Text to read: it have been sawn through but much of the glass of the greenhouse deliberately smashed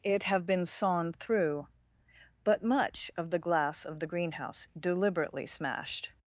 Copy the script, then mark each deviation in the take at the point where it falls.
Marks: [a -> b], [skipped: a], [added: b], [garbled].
it have been sawn through but much of the glass of the greenhouse deliberately smashed